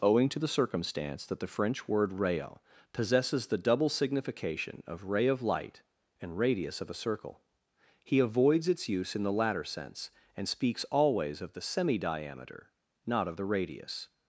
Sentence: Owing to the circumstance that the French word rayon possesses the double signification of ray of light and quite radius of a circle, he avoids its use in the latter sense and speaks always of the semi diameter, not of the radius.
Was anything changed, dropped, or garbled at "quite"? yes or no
yes